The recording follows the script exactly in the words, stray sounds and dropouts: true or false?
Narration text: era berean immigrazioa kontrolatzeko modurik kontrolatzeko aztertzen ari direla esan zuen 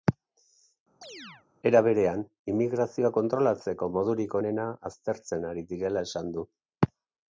false